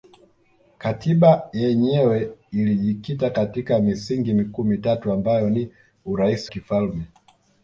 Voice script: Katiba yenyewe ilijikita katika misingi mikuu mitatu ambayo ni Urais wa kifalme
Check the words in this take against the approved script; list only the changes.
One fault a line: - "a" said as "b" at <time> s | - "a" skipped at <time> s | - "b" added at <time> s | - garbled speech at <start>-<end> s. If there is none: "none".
- "wa" skipped at 6.5 s